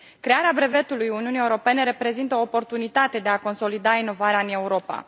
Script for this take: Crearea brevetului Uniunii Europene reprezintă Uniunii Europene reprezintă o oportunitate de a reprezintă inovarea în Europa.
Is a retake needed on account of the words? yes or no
yes